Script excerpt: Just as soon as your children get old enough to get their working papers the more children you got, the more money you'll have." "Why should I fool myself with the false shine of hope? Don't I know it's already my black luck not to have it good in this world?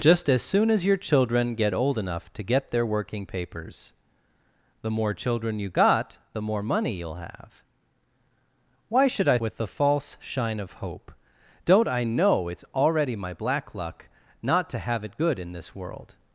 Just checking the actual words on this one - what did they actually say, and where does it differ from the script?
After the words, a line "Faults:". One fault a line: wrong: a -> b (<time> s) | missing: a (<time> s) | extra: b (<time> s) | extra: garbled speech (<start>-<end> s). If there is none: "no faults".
Just as soon as your children get old enough to get their working papers the more children you got, the more money you'll have." "Why should I with the false shine of hope? Don't I know it's already my black luck not to have it good in this world?
Faults:
missing: fool myself (9.4 s)